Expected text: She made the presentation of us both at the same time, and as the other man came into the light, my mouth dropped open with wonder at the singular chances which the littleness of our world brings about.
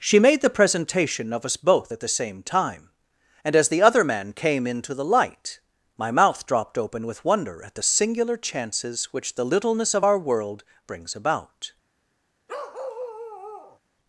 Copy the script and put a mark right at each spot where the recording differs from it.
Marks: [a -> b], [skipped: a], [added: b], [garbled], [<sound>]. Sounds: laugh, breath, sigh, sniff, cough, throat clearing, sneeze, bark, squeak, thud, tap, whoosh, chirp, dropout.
She made the presentation of us both at the same time, and as the other man came into the light, my mouth dropped open with wonder at the singular chances which the littleness of our world brings about. [bark]